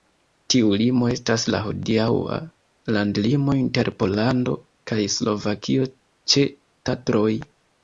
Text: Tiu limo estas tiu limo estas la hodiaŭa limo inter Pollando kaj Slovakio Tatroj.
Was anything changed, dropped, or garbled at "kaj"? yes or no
no